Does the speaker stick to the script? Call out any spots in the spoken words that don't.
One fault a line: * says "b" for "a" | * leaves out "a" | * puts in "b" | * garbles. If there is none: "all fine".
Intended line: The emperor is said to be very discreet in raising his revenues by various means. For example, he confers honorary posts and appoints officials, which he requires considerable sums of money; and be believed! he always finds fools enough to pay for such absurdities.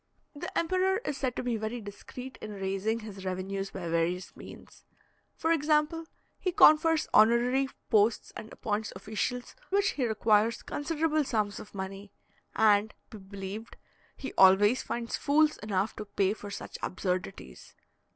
all fine